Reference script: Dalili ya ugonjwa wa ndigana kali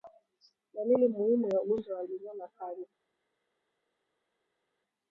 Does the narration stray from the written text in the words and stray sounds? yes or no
yes